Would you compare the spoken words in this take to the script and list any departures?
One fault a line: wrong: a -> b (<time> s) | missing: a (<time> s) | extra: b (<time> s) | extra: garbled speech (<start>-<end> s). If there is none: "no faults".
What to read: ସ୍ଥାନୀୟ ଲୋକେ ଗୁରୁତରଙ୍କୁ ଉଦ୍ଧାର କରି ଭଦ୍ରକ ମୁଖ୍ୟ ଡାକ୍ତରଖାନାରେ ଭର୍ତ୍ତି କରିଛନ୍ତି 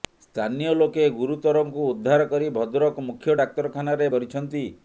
missing: ଭର୍ତ୍ତି (4.1 s)